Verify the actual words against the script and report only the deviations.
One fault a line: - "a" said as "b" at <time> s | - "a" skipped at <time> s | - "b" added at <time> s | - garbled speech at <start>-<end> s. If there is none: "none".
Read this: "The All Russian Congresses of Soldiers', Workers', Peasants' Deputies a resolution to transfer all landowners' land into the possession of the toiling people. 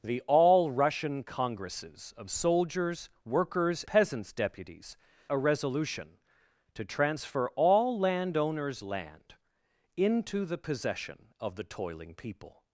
none